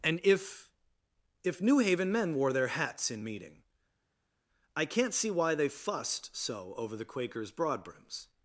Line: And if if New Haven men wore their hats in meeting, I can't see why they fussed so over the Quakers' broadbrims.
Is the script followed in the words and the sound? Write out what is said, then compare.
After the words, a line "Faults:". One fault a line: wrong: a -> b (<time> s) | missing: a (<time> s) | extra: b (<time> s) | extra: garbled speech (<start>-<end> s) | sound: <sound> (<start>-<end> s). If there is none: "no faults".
And if if New Haven men wore their hats in meeting, I can't see why they fussed so over the Quakers' broadbrims.
Faults:
no faults